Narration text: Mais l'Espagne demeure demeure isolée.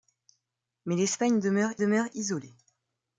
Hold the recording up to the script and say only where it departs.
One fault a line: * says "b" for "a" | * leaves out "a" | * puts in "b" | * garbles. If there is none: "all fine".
all fine